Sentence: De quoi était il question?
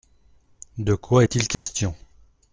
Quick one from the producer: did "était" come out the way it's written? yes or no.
no